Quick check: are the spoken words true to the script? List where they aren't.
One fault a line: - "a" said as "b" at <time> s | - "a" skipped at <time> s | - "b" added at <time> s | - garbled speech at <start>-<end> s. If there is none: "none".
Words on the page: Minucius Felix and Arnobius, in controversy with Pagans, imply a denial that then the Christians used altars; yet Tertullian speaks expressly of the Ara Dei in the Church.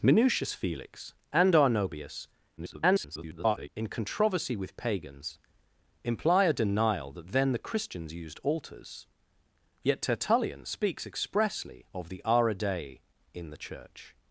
- garbled speech at 2.6-3.7 s